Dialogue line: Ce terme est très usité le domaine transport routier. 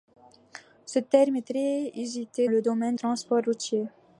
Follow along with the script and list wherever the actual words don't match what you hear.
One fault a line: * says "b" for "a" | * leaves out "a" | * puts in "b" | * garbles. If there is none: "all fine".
all fine